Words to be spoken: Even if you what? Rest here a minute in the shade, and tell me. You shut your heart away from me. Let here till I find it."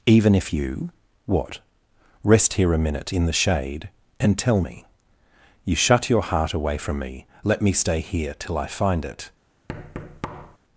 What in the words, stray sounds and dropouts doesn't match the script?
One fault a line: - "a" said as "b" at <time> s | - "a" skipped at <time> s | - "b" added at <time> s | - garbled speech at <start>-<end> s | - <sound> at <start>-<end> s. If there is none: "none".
- "me stay" added at 7.6 s
- thud at 9.7-10.6 s